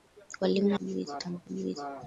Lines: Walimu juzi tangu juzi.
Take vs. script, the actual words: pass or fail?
pass